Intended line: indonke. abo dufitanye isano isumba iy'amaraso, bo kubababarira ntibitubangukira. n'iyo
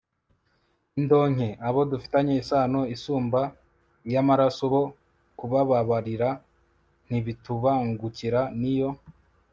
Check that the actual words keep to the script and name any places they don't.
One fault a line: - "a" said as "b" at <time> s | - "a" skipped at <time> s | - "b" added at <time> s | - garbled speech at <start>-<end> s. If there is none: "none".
none